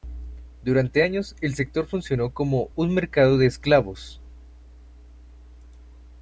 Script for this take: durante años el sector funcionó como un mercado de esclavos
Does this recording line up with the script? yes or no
yes